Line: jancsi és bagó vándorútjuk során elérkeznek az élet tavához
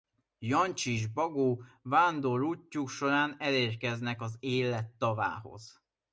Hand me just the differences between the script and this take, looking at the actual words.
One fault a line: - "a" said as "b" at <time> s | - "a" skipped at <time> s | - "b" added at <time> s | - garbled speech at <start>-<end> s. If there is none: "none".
none